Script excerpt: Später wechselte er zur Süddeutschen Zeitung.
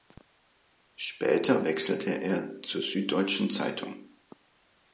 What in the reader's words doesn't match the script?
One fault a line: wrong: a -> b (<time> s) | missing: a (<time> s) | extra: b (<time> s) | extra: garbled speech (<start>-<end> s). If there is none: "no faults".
no faults